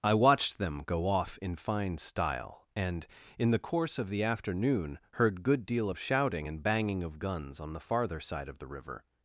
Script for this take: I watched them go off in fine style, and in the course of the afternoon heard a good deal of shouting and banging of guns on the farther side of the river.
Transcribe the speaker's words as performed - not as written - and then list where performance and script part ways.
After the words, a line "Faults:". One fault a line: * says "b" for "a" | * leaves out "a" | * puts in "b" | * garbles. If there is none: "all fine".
I watched them go off in fine style, and in the course of the afternoon heard good deal of shouting and banging of guns on the farther side of the river.
Faults:
* leaves out "a"